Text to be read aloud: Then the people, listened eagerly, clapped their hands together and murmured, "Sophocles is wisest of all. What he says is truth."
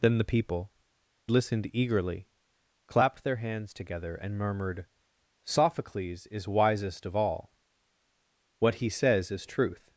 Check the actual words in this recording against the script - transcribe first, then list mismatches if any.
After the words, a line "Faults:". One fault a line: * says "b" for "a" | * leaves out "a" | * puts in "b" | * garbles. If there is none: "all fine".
Then the people, listened eagerly, clapped their hands together and murmured, "Sophocles is wisest of all. What he says is truth."
Faults:
all fine